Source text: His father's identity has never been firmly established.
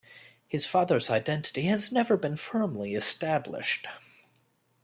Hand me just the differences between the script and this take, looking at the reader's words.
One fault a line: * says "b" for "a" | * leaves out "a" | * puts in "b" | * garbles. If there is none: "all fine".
all fine